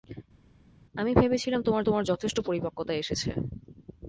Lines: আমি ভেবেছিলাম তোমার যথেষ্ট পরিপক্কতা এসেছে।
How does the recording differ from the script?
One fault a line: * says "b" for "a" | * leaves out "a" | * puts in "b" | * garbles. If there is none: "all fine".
* puts in "তোমার"